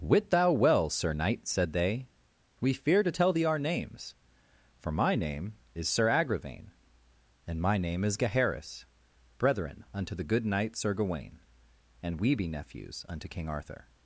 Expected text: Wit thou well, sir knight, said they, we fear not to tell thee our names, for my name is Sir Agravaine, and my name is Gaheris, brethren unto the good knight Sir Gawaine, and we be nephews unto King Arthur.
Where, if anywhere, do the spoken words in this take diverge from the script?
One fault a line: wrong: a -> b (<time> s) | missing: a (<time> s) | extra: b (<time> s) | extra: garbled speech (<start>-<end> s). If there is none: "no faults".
missing: not (3.0 s)